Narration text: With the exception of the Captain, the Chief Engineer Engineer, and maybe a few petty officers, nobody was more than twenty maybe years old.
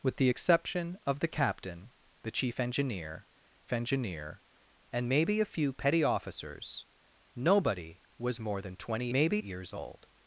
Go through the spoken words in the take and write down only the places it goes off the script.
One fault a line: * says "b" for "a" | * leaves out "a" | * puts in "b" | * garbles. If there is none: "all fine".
all fine